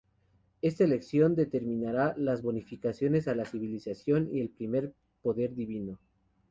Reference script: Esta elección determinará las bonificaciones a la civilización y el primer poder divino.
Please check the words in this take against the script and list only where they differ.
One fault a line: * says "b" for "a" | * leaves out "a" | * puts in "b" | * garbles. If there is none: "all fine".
all fine